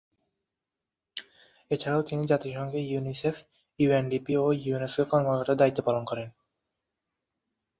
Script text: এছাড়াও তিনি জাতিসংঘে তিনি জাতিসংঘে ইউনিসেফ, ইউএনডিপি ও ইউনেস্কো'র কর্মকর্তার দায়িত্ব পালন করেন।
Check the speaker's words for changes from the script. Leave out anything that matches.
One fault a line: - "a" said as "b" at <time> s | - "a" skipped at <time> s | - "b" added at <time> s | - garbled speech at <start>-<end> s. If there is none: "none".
- "তিনি জাতিসংঘে" skipped at 2.8 s